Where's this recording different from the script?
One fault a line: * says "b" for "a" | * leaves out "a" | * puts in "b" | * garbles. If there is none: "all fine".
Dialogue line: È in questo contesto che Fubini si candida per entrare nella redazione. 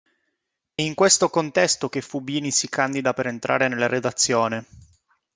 all fine